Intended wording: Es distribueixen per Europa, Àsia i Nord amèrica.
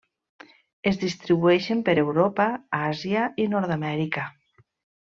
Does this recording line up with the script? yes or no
yes